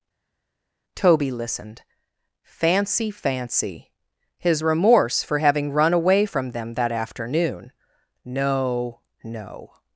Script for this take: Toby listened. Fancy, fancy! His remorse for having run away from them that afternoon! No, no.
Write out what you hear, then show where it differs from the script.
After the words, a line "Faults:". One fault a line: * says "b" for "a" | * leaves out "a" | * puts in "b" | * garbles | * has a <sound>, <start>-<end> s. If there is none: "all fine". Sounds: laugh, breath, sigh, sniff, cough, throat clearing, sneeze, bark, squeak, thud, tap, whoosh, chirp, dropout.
Toby listened. Fancy, fancy! His remorse for having run away from them that afternoon! No, no.
Faults:
all fine